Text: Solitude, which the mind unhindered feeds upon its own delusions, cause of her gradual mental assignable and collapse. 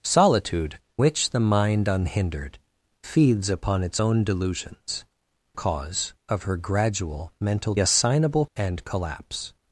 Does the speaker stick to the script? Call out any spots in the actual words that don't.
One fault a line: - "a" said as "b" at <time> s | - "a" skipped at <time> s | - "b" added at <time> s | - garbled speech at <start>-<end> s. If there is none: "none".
none